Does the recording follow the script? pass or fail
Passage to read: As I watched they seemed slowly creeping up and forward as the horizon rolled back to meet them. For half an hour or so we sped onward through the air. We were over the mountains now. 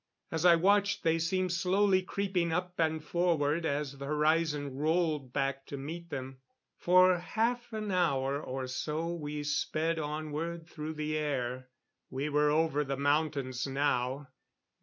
pass